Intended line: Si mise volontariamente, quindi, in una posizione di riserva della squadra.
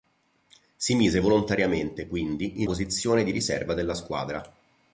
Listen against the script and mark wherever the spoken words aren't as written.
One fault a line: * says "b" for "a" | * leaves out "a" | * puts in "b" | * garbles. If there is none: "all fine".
* leaves out "una"